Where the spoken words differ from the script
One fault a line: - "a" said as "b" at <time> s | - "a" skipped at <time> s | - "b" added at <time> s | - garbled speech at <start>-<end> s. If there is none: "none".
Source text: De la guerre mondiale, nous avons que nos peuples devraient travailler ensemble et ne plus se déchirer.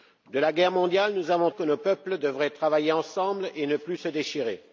none